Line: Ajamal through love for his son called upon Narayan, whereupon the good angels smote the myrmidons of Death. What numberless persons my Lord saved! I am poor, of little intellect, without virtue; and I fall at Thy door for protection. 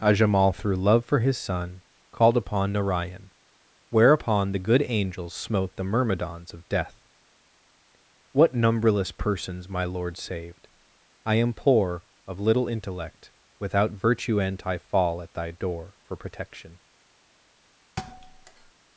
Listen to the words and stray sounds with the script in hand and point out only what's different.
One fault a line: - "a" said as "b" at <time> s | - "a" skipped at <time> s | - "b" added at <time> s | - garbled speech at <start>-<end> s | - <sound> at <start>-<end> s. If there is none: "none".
- thud at 18.0-18.7 s